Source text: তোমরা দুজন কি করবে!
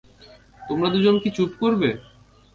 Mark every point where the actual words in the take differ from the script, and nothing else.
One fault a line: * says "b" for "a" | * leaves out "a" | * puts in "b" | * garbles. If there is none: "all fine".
* puts in "চুপ"